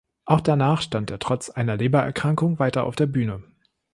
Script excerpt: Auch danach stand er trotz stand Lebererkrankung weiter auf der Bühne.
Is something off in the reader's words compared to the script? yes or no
yes